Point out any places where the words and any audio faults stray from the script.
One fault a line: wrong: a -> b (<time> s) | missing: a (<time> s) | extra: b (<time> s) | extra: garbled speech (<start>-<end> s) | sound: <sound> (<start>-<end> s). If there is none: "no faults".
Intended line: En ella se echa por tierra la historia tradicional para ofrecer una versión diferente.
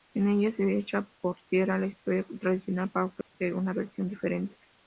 sound: dropout (3.2-3.3 s)